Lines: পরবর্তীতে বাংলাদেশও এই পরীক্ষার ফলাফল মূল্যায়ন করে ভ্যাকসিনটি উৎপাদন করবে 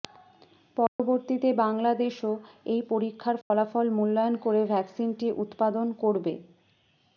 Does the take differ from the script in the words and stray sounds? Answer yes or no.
yes